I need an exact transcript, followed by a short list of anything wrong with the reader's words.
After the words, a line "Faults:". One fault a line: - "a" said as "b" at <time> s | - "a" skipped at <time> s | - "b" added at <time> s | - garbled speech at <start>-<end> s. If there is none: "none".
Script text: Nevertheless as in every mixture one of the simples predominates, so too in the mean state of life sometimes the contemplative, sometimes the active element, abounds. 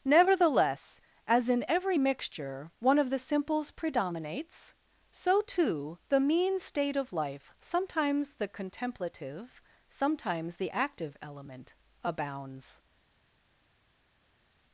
Nevertheless as in every mixture one of the simples predominates, so too the mean state of life sometimes the contemplative, sometimes the active element, abounds.
Faults:
- "in" skipped at 6.0 s